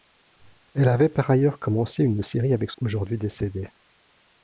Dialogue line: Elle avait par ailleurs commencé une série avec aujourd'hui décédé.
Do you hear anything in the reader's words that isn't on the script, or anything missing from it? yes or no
no